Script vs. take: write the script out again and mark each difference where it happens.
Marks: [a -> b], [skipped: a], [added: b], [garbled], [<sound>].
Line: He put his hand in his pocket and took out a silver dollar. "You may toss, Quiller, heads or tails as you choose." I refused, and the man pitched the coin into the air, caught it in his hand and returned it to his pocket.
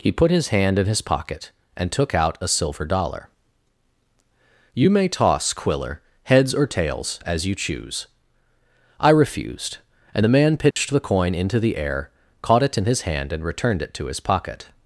He put his hand in his pocket and took out a silver dollar. "You may toss, Quiller, heads or tails as you choose." I refused, and the man pitched [dropout] the coin into the air, caught it in his hand and returned it to his pocket.